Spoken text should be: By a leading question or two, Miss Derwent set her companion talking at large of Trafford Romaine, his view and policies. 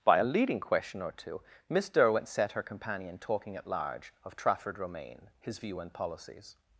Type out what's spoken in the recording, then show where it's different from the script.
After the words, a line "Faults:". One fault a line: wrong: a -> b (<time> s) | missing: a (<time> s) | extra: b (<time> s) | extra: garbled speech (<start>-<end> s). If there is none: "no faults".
By a leading question or two, Miss Derwent set her companion talking at large of Trafford Romaine, his view and policies.
Faults:
no faults